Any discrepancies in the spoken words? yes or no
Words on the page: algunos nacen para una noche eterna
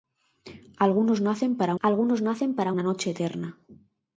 yes